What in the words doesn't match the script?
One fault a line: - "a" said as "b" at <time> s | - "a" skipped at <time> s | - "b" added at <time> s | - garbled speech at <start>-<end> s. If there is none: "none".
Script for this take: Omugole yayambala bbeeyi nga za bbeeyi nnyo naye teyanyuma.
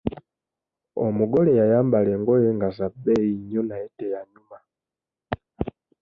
- "bbeeyi" said as "engoye" at 2.2 s